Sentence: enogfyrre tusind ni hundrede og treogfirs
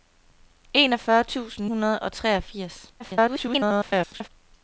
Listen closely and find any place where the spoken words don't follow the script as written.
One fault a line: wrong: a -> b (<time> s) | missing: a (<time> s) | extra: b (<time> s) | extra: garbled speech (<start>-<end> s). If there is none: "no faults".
missing: ni (1.7 s)
extra: garbled speech (3.0-4.3 s)